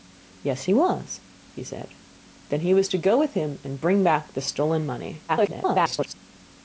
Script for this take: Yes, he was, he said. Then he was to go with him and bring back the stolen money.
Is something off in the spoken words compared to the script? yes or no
yes